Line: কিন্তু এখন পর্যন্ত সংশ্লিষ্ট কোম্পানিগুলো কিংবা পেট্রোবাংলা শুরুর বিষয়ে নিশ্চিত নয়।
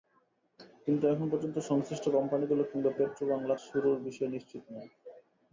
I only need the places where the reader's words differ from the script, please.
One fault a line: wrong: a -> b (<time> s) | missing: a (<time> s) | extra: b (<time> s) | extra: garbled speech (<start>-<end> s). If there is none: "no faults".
no faults